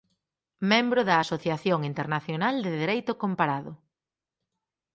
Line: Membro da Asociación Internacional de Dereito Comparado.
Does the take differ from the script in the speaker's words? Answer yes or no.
no